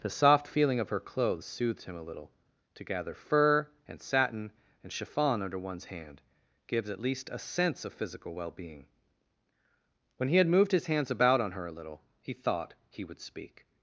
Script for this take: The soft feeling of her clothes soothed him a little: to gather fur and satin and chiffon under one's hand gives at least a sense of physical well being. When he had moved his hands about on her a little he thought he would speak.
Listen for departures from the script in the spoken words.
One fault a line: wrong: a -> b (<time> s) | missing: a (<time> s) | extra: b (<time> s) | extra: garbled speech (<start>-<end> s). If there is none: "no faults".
no faults